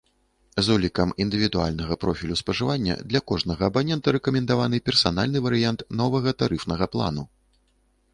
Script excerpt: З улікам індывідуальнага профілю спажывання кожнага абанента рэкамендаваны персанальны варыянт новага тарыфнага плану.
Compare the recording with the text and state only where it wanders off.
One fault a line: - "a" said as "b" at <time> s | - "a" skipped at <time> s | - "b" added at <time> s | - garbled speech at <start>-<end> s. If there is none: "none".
- "для" added at 3.1 s